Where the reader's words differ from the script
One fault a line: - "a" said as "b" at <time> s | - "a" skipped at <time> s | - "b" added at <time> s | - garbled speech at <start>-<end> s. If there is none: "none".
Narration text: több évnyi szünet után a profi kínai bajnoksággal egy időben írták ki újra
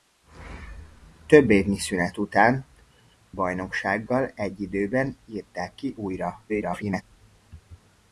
- "a profi kínai" skipped at 2.6 s
- garbled speech at 6.5-7.0 s